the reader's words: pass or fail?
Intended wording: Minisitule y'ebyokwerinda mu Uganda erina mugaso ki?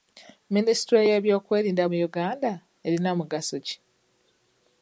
pass